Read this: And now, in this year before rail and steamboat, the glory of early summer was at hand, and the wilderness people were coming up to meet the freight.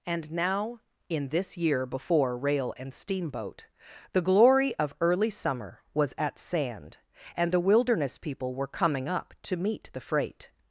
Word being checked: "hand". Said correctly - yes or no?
no